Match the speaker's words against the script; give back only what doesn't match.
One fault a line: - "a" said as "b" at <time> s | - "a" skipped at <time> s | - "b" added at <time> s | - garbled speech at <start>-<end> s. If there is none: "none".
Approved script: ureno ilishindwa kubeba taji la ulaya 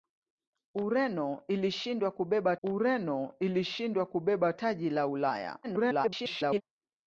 - "ureno ilishindwa kubeba" added at 2.6 s
- garbled speech at 5.6-6.6 s